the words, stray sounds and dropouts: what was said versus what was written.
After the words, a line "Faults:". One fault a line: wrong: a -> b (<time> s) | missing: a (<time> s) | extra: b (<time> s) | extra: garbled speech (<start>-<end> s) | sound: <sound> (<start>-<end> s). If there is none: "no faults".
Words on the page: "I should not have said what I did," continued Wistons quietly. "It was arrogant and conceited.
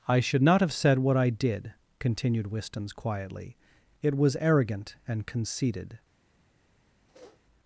"I should not have said what I did," continued Wistons quietly. "It was arrogant and conceited.
Faults:
sound: sniff (7.1-7.4 s)